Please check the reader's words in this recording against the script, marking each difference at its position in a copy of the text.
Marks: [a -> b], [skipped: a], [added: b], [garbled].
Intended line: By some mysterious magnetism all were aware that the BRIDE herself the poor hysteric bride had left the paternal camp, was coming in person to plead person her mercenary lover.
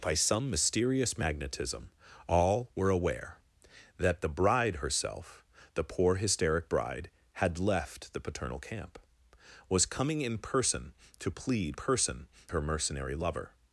By some mysterious magnetism all were aware that the BRIDE herself the poor hysteric bride had left the paternal camp, was coming in person to plead person her mercenary lover.